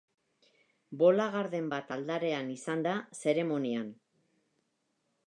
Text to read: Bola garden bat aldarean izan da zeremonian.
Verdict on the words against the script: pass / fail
pass